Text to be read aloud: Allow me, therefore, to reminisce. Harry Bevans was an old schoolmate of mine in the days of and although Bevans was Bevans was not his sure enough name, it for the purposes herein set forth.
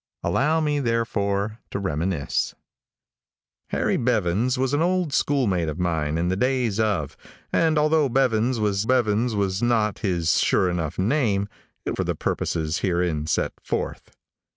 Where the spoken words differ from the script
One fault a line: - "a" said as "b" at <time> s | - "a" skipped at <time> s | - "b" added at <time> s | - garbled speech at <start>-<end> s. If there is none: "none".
none